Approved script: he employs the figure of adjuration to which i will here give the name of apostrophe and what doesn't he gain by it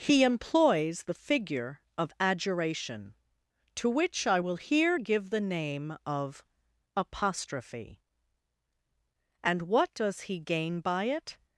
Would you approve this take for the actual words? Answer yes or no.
no